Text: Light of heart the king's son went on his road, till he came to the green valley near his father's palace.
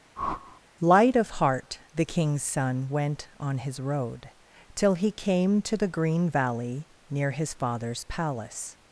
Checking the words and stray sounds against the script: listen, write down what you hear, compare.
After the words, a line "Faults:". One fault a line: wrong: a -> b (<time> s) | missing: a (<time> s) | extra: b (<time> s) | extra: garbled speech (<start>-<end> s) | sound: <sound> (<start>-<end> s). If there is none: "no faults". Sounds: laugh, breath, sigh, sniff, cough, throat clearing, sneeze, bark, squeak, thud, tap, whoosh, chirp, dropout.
Light of heart the king's son went on his road, till he came to the green valley near his father's palace.
Faults:
sound: whoosh (0.2-0.6 s)